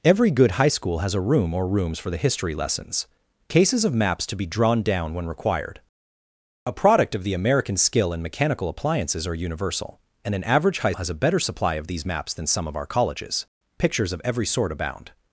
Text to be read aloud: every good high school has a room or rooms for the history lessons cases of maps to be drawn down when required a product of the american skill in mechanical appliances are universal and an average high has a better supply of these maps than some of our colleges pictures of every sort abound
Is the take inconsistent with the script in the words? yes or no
no